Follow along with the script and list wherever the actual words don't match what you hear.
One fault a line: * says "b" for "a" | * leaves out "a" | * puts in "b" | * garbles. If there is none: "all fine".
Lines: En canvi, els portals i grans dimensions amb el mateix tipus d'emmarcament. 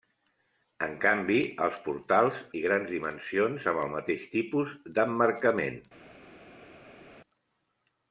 all fine